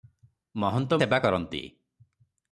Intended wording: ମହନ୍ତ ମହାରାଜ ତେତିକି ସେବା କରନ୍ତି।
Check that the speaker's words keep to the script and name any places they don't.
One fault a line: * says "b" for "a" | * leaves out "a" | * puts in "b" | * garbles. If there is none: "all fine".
* leaves out "ମହାରାଜ ତେତିକି"